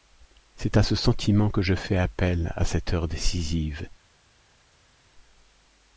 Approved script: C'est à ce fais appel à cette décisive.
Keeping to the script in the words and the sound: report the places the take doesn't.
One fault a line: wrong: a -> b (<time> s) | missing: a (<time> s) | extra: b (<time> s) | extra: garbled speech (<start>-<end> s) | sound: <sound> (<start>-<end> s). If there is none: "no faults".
extra: sentiment que je (0.9 s)
extra: heure (2.9 s)